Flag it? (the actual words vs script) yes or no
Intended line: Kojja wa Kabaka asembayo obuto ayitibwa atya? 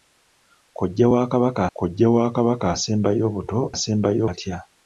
yes